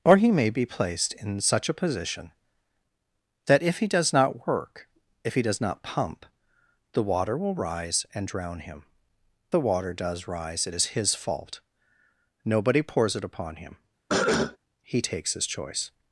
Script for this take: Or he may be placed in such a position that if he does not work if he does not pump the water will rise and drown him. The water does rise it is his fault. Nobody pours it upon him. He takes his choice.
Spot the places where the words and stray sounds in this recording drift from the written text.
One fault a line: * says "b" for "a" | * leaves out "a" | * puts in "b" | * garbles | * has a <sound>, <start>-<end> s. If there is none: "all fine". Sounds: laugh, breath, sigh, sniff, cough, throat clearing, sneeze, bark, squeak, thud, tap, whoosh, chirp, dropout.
* has a cough, 14.1-14.6 s